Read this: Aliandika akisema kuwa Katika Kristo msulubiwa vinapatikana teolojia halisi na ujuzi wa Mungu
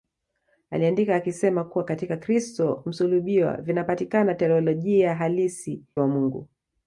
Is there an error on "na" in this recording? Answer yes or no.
yes